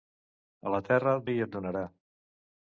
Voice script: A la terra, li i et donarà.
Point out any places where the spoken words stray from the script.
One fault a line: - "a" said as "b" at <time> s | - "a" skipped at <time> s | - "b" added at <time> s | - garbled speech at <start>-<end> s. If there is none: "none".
none